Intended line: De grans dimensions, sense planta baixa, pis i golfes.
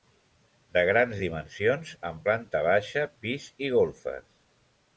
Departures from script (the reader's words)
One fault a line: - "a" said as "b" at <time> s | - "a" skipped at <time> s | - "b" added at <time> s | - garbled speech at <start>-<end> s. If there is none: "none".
- "sense" said as "amb" at 2.1 s